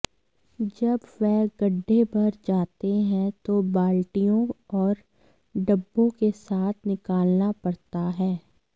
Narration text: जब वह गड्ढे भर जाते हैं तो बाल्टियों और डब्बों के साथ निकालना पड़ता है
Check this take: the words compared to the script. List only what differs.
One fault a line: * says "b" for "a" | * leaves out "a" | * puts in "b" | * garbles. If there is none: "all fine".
all fine